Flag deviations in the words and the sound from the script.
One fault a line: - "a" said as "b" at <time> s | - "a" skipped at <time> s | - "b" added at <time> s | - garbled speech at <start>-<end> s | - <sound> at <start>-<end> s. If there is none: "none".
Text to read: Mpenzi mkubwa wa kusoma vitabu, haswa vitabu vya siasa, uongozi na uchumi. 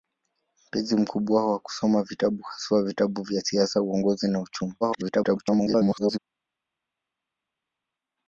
- garbled speech at 4.8-6.2 s